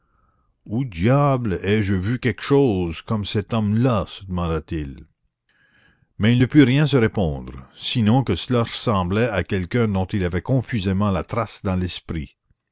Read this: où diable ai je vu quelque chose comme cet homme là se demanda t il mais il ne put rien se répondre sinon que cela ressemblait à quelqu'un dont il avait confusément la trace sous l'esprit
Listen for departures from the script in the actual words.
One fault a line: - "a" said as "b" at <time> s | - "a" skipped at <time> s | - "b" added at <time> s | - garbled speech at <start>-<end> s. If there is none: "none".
- "sous" said as "dans" at 11.6 s